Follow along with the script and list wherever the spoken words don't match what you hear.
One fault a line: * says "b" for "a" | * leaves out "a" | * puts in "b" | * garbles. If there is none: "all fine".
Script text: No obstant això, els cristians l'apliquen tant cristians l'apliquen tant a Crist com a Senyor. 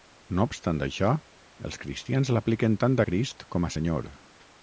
* leaves out "cristians l'apliquen tant"